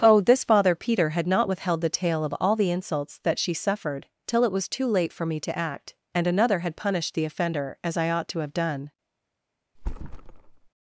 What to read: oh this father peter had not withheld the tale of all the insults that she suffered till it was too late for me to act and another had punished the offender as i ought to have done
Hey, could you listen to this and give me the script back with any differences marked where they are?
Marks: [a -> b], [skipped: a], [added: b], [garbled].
oh this father peter had not withheld the tale of all the insults that she suffered till it was too late for me to act and another had punished the offender as i ought to have done